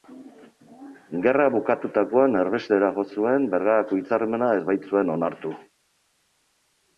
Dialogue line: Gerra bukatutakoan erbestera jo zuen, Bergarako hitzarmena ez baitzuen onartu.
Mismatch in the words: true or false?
false